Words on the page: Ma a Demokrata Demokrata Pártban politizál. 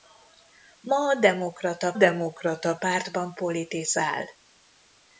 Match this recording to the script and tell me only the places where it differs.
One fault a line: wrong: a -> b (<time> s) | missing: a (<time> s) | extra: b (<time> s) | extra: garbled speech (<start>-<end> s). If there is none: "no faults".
no faults